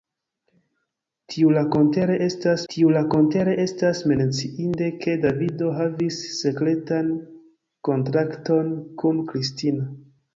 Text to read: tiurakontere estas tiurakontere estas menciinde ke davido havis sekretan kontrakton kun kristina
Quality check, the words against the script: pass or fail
pass